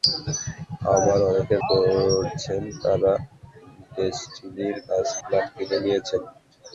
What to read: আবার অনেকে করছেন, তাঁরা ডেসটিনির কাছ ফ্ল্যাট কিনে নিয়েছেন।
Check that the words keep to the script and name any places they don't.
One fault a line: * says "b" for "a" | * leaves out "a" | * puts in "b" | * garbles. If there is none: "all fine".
all fine